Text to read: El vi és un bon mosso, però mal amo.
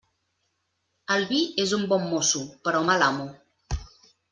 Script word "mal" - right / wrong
right